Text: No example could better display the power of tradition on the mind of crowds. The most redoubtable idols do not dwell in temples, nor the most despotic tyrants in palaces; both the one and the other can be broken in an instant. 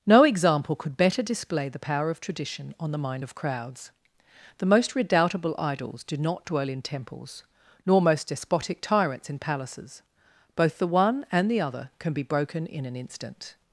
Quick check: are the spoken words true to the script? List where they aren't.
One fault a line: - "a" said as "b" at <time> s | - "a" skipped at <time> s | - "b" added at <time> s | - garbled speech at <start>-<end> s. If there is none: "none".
- "the" skipped at 8.0 s